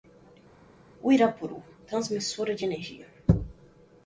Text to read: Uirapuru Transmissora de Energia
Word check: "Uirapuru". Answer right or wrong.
right